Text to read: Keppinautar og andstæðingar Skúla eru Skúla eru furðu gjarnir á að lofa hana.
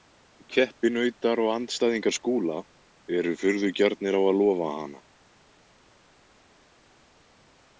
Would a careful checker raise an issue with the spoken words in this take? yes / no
yes